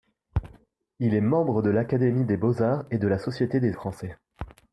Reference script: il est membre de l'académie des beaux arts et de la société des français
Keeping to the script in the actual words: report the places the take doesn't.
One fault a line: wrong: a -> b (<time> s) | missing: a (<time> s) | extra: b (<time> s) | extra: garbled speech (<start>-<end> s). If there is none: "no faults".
no faults